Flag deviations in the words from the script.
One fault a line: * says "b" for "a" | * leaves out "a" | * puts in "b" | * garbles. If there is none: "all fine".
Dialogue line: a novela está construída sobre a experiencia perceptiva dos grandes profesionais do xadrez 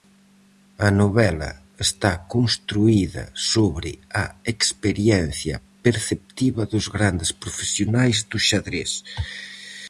all fine